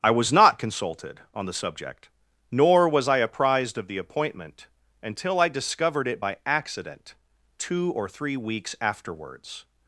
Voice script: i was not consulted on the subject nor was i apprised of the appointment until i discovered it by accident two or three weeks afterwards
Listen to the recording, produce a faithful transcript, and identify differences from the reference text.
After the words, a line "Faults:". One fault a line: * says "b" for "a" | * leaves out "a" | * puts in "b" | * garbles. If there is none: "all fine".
i was not consulted on the subject nor was i apprised of the appointment until i discovered it by accident two or three weeks afterwards
Faults:
all fine